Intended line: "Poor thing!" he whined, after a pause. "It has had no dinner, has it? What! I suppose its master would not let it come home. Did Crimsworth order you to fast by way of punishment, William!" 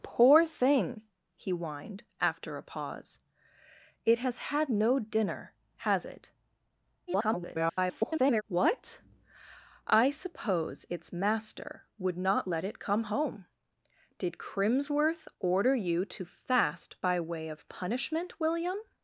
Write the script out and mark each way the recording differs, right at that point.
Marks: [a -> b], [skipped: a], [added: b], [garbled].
"Poor thing!" he whined, after a pause. "It has had no dinner, has it? [garbled] What! I suppose its master would not let it come home. Did Crimsworth order you to fast by way of punishment, William!"